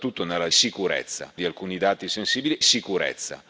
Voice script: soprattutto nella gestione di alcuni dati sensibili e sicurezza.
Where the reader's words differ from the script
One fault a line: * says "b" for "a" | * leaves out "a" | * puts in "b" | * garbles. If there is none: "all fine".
* says "sicurezza" for "gestione"
* leaves out "e"